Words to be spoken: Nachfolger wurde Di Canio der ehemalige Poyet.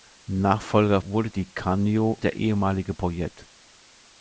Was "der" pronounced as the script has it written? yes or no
yes